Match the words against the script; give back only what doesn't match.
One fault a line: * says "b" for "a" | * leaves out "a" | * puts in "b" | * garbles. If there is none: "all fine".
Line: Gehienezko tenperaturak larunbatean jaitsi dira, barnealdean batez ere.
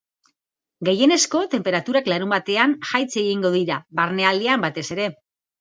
* puts in "egingo"